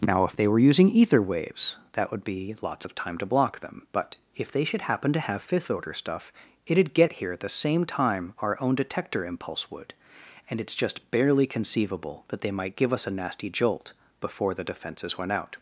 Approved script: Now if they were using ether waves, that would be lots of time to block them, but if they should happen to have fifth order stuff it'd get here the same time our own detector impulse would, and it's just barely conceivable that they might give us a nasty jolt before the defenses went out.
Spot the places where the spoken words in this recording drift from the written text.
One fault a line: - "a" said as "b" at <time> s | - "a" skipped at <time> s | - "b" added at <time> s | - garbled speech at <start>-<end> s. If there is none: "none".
- "at" added at 7.3 s